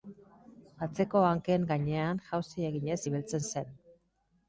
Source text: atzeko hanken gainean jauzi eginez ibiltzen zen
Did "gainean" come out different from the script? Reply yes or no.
no